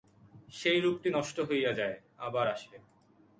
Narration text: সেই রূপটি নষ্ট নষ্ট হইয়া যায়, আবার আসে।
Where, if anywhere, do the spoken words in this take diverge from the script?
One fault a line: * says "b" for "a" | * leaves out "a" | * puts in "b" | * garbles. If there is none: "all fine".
* leaves out "নষ্ট"